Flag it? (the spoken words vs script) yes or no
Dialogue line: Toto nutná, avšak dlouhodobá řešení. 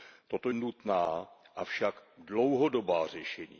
no